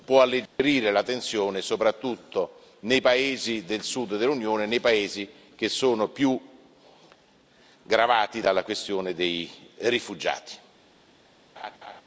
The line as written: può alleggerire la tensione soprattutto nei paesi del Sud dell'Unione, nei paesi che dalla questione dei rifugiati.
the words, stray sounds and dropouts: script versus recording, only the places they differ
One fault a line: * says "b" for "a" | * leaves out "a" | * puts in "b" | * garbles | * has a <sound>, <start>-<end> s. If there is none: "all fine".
* has a dropout, 0.5-0.6 s
* puts in "sono più gravati"
* has a laugh, 11.6-12.0 s